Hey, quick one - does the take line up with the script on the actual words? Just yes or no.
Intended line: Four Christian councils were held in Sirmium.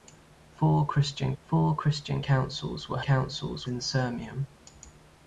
no